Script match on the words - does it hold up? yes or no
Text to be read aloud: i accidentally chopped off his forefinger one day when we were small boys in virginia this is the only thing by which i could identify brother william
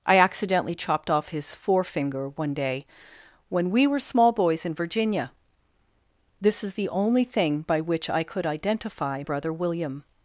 yes